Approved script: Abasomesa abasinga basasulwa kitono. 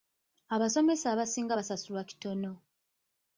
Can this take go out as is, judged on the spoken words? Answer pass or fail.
pass